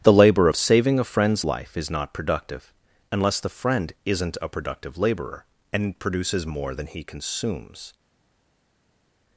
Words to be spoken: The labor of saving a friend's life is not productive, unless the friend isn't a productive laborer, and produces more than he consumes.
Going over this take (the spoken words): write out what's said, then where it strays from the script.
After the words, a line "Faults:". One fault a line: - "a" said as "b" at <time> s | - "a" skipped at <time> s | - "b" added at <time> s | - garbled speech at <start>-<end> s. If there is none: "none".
The labor of saving a friend's life is not productive, unless the friend isn't a productive laborer, and produces more than he consumes.
Faults:
none